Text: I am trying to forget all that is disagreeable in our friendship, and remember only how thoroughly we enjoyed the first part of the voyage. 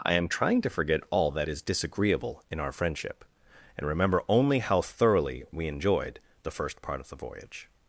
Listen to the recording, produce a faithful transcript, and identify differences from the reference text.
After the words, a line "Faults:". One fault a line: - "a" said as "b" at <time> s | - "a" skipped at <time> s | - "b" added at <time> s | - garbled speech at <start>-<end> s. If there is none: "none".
I am trying to forget all that is disagreeable in our friendship, and remember only how thoroughly we enjoyed the first part of the voyage.
Faults:
none